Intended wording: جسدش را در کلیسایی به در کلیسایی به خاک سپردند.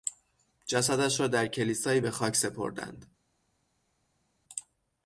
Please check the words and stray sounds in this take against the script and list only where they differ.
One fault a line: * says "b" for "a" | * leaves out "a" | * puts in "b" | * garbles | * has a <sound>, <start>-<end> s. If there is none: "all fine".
* leaves out "در کلیسایی به"